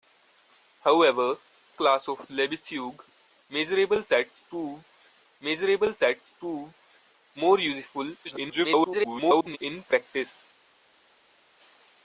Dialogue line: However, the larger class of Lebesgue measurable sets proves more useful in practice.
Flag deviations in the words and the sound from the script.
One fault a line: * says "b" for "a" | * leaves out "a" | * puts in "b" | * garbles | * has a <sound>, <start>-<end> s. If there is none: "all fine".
* leaves out "the larger"
* puts in "measurable sets proves"
* garbles